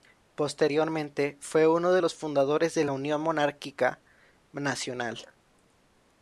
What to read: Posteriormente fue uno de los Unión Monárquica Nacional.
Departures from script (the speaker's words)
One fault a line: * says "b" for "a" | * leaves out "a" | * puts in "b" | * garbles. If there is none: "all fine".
* puts in "fundadores de la"